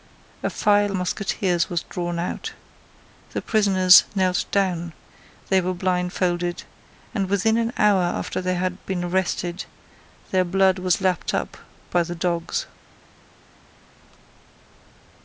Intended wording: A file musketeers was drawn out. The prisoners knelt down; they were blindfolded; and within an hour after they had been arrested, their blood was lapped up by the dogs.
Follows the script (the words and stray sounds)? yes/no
yes